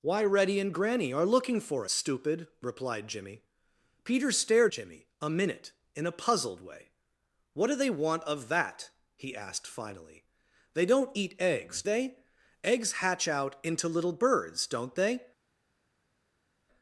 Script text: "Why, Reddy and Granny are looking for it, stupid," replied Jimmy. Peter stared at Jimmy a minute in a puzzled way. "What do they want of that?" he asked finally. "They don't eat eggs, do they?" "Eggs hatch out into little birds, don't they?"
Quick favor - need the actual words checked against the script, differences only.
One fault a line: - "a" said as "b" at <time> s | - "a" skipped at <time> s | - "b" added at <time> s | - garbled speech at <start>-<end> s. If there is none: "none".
- "it" skipped at 1.9 s
- "at" skipped at 4.7 s
- "do" skipped at 11.8 s